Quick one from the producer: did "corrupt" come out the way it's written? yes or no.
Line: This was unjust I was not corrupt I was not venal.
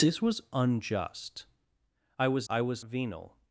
no